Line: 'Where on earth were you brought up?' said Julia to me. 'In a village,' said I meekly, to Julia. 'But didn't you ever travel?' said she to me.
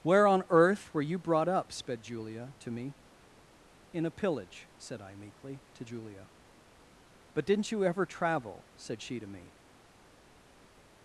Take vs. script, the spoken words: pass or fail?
fail